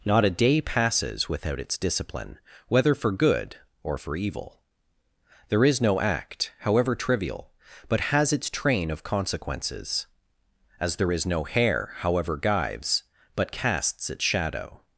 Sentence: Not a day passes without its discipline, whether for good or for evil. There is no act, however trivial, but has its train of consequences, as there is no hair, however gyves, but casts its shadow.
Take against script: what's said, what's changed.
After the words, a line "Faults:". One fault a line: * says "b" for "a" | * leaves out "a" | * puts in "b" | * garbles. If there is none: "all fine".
Not a day passes without its discipline, whether for good or for evil. There is no act, however trivial, but has its train of consequences, as there is no hair, however gyves, but casts its shadow.
Faults:
all fine